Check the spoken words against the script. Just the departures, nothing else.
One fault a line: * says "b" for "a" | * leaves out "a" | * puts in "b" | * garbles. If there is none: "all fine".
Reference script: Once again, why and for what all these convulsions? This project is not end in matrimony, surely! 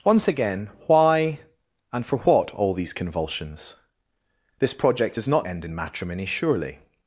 all fine